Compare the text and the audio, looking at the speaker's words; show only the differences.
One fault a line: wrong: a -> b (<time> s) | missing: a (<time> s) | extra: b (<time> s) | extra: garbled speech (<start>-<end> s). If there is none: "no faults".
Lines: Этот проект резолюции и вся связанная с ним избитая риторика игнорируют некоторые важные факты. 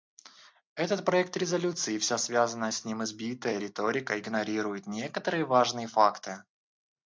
no faults